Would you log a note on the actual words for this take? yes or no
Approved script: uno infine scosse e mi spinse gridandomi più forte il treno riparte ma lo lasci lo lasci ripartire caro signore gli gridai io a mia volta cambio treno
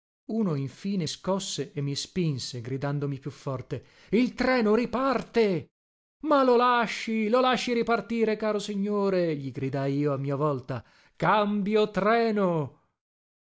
no